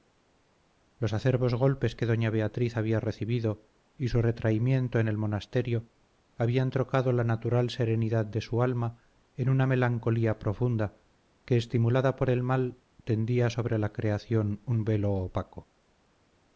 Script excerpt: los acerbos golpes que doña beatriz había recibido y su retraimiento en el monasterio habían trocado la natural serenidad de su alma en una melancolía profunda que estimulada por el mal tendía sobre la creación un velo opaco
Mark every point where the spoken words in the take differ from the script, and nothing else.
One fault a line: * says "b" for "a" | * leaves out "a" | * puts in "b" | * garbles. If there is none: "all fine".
all fine